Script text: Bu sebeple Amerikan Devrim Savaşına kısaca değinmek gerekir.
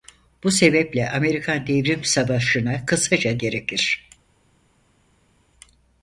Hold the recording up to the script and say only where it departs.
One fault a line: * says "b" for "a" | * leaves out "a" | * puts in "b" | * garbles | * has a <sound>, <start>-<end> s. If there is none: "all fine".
* leaves out "değinmek"